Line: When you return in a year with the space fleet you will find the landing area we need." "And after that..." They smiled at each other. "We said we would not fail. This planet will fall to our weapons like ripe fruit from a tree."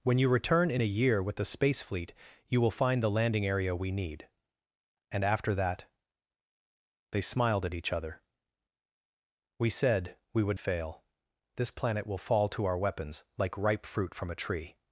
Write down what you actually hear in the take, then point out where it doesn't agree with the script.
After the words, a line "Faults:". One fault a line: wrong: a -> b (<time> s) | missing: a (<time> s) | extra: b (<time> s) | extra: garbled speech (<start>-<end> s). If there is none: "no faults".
When you return in a year with the space fleet you will find the landing area we need." "And after that..." They smiled at each other. "We said we would fail. This planet will fall to our weapons like ripe fruit from a tree."
Faults:
missing: not (10.6 s)